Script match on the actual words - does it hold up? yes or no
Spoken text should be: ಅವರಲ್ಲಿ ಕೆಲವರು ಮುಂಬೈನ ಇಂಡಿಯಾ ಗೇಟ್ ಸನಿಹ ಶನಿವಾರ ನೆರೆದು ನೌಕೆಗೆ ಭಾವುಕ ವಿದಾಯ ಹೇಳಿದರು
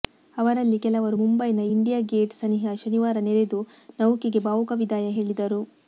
yes